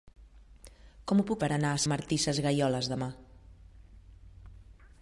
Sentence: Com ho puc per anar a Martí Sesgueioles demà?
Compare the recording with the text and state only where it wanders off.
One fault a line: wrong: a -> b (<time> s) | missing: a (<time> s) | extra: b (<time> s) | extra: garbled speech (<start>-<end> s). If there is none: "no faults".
no faults